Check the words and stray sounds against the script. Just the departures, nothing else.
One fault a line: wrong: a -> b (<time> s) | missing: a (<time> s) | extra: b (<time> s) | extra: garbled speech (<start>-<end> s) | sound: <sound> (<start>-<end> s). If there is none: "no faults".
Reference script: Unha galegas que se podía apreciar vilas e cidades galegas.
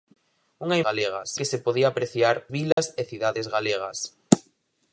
sound: dropout (2.7-2.8 s)